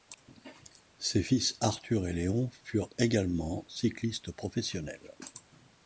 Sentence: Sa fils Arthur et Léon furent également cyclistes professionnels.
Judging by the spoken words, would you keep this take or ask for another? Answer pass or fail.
fail